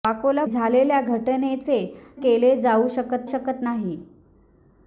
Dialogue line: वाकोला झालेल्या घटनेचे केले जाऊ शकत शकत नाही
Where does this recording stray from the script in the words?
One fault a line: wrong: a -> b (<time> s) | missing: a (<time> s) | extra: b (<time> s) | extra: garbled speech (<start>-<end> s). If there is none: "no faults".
no faults